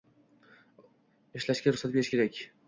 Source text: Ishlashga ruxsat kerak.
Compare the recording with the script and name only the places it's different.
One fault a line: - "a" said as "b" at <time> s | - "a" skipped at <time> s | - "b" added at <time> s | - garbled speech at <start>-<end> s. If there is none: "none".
- "berish" added at 2.0 s